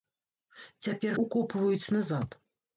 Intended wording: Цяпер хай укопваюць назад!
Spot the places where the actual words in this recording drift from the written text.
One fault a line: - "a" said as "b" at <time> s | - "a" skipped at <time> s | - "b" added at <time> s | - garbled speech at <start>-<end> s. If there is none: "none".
- "хай" skipped at 1.1 s